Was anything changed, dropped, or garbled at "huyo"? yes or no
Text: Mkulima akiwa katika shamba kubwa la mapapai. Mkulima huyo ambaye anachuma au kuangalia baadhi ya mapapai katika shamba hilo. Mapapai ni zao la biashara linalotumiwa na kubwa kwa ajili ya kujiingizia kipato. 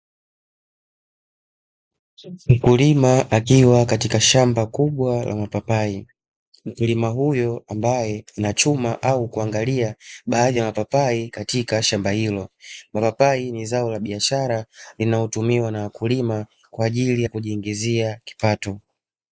no